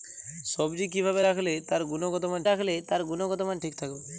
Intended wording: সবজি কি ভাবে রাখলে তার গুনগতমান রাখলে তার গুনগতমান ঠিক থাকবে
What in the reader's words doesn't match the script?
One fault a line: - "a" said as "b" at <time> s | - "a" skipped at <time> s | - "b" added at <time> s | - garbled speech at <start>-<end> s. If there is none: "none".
none